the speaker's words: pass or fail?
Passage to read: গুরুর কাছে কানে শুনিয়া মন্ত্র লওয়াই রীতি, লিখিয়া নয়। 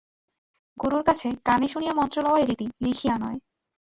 pass